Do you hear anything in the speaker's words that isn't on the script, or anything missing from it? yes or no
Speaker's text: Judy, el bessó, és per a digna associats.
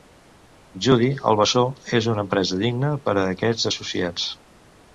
yes